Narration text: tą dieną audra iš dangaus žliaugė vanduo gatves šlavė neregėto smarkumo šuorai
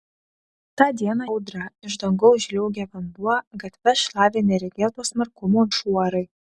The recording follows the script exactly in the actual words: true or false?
true